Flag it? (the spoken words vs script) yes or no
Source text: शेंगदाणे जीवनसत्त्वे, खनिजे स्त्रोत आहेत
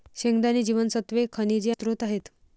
no